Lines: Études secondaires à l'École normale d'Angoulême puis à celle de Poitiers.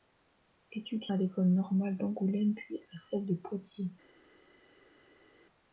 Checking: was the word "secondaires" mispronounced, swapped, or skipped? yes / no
yes